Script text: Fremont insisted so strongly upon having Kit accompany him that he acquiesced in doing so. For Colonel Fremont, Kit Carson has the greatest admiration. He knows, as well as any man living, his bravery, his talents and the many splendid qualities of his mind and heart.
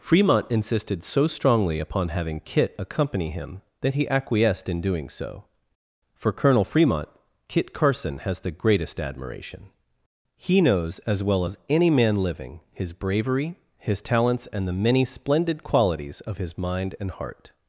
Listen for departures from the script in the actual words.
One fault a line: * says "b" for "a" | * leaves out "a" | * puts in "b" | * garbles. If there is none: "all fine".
all fine